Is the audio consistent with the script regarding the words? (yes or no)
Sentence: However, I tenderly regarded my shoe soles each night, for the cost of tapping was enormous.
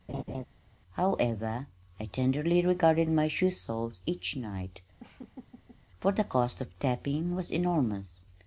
yes